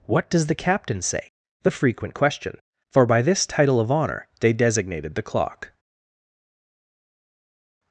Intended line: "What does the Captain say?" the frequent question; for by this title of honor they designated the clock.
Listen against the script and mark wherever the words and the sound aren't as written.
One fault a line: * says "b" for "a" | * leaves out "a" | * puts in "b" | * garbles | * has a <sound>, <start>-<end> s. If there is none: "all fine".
all fine